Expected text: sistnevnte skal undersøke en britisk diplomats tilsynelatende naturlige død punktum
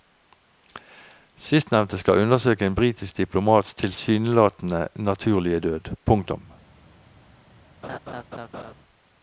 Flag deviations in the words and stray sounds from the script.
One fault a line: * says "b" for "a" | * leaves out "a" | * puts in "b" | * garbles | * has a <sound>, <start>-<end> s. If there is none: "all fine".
* has a laugh, 7.8-8.7 s